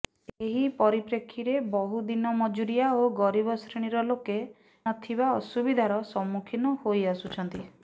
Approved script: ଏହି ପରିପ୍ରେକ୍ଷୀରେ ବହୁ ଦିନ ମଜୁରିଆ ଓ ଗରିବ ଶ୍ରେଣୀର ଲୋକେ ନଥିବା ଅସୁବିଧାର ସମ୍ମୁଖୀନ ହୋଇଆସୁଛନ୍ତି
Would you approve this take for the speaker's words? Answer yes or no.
yes